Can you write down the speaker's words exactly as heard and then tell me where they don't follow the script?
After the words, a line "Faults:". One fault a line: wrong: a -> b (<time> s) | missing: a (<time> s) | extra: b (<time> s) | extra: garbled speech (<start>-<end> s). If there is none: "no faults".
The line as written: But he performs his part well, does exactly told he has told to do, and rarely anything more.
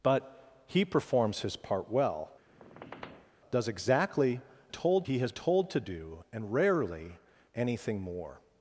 But he performs his part well, does exactly told he has told to do, and rarely anything more.
Faults:
no faults